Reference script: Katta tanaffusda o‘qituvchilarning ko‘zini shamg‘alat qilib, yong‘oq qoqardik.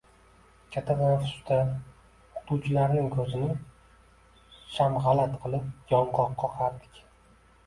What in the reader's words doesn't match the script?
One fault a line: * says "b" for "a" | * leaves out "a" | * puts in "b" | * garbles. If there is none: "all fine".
all fine